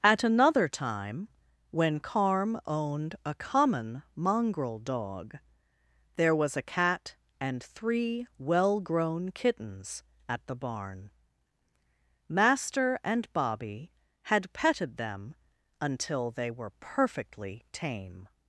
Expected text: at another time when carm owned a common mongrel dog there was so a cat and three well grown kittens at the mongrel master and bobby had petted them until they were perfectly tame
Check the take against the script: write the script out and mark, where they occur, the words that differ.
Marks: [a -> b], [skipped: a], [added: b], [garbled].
at another time when carm owned a common mongrel dog there was [skipped: so] a cat and three well grown kittens at the [mongrel -> barn] master and bobby had petted them until they were perfectly tame